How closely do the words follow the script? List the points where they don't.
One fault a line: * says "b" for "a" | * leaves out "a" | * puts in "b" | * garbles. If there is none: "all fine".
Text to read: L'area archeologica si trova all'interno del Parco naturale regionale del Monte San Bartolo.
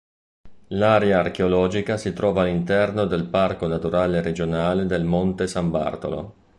all fine